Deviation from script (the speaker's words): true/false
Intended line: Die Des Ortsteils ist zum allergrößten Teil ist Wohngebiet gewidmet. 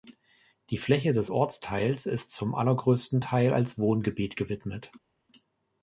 true